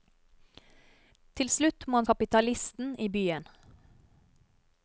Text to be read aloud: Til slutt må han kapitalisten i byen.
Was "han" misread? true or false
false